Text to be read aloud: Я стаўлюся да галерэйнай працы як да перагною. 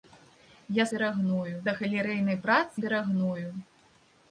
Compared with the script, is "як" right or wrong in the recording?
wrong